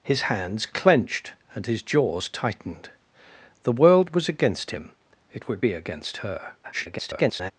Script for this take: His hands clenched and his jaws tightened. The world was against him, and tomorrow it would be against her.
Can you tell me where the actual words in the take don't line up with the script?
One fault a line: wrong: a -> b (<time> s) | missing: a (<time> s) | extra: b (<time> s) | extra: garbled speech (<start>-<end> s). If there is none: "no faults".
missing: and tomorrow (4.9 s)
extra: garbled speech (6.6-7.5 s)